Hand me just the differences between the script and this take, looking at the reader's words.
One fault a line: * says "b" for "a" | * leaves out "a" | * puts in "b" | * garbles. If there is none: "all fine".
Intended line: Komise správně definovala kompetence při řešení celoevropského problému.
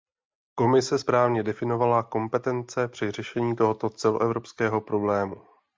* puts in "tohoto"